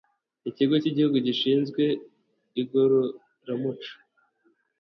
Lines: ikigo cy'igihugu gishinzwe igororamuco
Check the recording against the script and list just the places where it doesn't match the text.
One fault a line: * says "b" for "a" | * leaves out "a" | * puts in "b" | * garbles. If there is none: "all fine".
all fine